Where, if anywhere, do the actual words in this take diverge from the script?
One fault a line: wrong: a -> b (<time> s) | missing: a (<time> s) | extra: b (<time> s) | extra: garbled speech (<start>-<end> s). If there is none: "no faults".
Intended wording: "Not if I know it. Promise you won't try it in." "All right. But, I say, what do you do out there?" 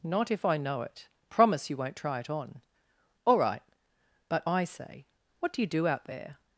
wrong: in -> on (2.3 s)